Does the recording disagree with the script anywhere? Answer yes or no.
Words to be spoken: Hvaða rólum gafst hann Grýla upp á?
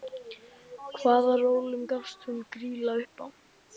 yes